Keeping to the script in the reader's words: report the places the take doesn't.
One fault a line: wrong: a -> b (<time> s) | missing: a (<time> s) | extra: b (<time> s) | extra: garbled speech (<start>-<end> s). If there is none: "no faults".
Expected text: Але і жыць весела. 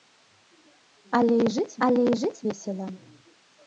extra: але і жыць (1.9 s)